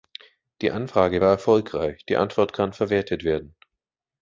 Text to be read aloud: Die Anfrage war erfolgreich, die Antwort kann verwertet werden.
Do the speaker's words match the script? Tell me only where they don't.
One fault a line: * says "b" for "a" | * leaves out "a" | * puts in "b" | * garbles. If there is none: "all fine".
all fine